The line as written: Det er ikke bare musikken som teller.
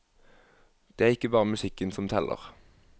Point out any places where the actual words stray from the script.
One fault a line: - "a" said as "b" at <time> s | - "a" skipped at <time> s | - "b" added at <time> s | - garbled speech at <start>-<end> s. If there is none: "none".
none